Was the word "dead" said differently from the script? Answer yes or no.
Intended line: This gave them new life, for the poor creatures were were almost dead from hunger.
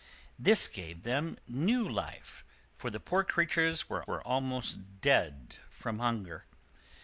no